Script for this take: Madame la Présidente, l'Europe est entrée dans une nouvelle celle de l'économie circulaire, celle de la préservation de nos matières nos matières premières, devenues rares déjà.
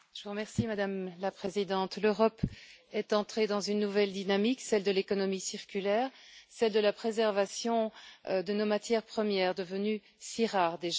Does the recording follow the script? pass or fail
fail